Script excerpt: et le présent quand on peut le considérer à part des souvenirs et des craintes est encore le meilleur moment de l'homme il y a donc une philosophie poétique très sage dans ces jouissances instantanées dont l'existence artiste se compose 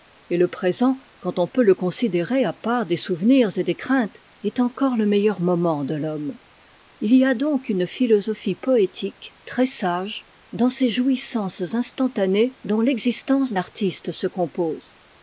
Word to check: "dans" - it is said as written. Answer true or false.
true